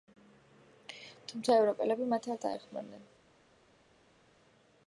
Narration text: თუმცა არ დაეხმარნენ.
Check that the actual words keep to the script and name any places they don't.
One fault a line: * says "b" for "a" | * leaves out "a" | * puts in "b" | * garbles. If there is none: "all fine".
* puts in "ევროპელები მათ"